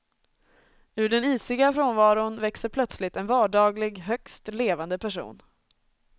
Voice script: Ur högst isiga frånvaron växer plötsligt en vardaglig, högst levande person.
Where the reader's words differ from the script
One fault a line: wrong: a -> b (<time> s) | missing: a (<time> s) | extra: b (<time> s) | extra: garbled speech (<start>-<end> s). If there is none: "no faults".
wrong: högst -> den (1.1 s)